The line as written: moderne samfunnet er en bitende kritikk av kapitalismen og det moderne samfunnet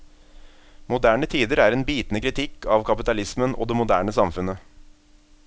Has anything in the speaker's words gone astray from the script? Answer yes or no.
yes